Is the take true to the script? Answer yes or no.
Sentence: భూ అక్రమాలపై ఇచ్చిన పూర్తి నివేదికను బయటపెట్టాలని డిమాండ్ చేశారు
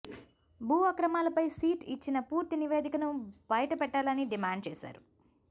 no